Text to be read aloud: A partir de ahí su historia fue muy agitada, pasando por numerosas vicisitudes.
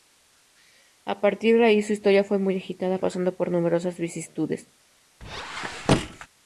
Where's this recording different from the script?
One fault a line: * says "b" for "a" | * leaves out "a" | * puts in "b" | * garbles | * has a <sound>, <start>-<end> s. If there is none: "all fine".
* has a squeak, 5.2-6.3 s